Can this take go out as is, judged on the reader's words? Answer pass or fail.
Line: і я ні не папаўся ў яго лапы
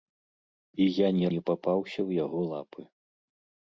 pass